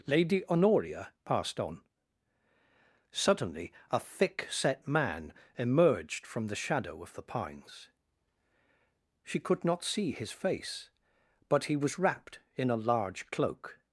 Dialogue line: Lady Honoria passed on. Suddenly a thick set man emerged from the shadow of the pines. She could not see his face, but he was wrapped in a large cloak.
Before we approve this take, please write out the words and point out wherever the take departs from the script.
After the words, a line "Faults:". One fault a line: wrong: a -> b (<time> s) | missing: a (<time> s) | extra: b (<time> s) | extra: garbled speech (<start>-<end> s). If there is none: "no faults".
Lady Honoria passed on. Suddenly a thick set man emerged from the shadow of the pines. She could not see his face, but he was wrapped in a large cloak.
Faults:
no faults